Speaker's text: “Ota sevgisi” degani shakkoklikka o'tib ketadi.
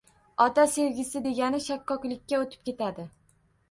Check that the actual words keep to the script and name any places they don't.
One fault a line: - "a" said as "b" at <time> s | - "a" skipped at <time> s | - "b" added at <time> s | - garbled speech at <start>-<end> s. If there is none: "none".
none